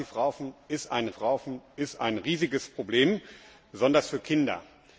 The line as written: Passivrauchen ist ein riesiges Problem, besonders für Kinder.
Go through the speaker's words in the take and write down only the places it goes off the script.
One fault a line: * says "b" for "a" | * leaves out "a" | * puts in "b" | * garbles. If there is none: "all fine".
* puts in "passivrauchen ist ein"